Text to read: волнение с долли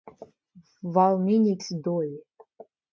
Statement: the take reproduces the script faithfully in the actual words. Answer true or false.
true